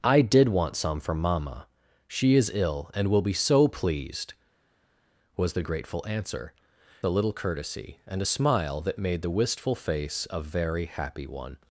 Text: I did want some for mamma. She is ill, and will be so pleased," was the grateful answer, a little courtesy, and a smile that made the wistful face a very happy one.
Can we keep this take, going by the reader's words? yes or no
yes